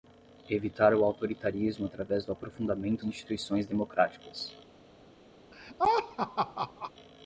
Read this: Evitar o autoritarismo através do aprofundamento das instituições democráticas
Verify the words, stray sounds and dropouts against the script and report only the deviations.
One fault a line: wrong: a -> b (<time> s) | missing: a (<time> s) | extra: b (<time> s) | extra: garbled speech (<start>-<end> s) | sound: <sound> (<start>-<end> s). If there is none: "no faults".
missing: das (3.0 s)
sound: laugh (5.5-6.9 s)